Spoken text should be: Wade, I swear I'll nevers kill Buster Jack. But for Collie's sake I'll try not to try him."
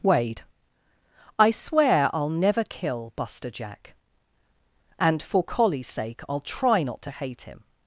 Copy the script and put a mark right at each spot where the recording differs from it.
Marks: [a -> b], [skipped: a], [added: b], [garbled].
Wade, I swear I'll [nevers -> never] kill Buster Jack. [But -> And] for Collie's sake I'll try not to [try -> hate] him."